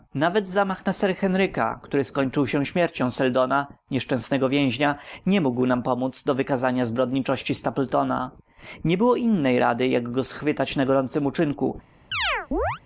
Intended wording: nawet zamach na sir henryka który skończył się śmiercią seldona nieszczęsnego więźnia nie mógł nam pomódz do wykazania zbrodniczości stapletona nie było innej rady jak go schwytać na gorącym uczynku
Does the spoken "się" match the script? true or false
true